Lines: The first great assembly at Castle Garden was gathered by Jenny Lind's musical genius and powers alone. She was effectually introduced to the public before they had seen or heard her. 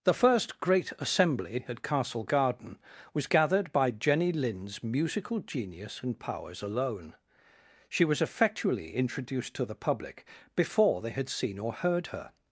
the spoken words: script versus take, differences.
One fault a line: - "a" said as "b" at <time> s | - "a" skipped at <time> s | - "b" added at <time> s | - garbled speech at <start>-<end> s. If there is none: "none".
none